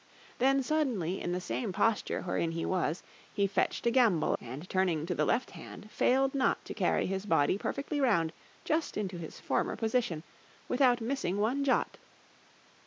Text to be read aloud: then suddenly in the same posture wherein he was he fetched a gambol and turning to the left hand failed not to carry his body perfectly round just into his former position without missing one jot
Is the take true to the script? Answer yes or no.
yes